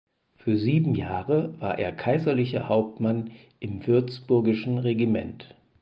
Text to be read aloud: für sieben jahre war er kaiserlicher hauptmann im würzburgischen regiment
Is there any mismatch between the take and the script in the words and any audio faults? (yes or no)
no